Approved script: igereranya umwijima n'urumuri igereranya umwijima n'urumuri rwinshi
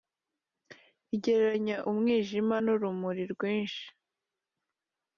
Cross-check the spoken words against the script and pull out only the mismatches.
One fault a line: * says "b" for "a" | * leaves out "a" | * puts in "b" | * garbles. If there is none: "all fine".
* leaves out "igereranya umwijima n'urumuri"